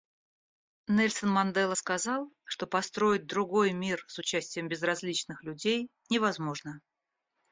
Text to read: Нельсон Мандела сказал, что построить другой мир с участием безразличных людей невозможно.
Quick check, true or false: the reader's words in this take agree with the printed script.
true